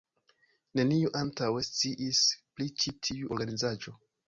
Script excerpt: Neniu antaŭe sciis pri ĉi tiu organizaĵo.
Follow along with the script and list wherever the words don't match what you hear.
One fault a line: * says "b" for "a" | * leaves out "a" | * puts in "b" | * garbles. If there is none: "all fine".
all fine